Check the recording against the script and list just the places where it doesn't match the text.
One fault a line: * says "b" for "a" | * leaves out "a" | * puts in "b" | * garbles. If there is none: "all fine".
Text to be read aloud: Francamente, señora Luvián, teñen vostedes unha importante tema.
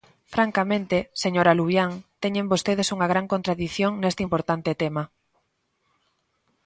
* puts in "gran contradición neste"